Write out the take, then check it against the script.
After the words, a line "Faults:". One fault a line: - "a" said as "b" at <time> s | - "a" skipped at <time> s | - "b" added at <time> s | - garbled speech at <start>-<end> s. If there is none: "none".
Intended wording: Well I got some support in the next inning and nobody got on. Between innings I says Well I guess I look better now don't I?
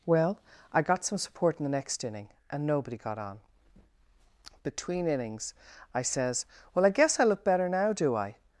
Well I got some support in the next inning and nobody got on. Between innings I says Well I guess I look better now do I?
Faults:
- "don't" said as "do" at 7.9 s